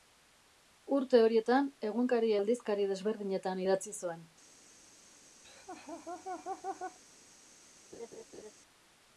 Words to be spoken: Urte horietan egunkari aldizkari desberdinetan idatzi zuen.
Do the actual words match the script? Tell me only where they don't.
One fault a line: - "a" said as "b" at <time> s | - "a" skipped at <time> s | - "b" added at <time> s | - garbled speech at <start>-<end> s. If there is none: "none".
none